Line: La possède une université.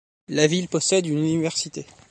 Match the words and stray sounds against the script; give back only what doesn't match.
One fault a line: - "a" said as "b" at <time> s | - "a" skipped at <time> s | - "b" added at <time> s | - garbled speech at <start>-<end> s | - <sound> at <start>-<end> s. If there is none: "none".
- "ville" added at 0.5 s